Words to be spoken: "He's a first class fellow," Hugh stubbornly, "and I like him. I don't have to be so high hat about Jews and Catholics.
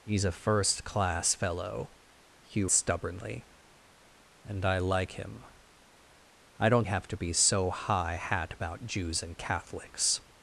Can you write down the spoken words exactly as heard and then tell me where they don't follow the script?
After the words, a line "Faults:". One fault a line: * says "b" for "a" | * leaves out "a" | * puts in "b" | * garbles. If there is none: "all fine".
"He's a first class fellow," Hugh stubbornly, "and I like him. I don't have to be so high hat about Jews and Catholics.
Faults:
all fine